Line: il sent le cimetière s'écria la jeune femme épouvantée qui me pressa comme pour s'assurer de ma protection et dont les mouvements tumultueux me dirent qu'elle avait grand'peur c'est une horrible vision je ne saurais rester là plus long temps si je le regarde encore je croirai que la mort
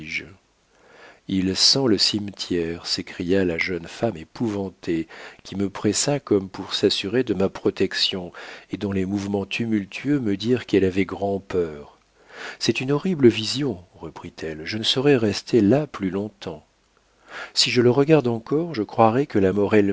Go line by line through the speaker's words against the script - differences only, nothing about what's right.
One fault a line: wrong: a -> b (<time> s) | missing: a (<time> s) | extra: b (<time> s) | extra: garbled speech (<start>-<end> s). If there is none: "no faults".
extra: reprit elle (14.0 s)